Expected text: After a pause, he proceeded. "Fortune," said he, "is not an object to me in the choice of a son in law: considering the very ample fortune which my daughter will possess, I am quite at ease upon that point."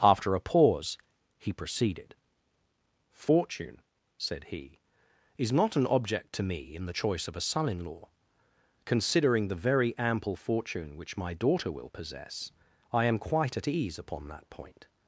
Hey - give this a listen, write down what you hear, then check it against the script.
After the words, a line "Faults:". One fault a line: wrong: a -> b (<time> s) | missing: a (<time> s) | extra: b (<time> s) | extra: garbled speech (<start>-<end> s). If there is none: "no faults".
After a pause, he proceeded. "Fortune," said he, "is not an object to me in the choice of a son in law: considering the very ample fortune which my daughter will possess, I am quite at ease upon that point."
Faults:
no faults